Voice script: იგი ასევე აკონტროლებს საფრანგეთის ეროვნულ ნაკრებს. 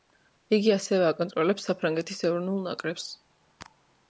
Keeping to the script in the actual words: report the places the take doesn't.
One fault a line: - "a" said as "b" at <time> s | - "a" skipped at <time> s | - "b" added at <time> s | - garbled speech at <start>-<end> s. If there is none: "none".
none